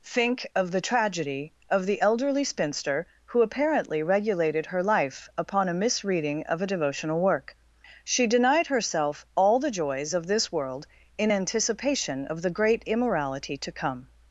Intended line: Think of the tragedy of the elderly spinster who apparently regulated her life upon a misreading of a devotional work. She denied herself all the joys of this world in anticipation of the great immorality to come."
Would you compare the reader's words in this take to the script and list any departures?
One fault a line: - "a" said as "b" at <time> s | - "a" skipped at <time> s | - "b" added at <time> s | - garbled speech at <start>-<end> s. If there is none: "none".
none